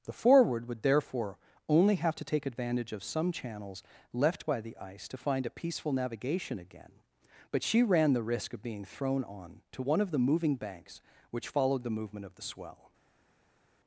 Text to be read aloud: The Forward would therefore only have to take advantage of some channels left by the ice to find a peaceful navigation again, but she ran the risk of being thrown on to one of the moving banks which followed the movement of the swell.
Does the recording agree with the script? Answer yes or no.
yes